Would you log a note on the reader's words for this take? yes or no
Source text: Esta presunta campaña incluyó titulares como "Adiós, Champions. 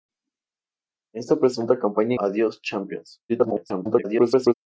yes